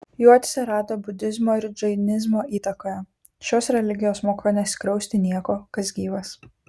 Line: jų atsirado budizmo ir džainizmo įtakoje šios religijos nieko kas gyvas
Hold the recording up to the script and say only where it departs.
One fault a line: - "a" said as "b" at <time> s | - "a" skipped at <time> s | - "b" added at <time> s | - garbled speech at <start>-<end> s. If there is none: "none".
- "moko neskriausti" added at 4.3 s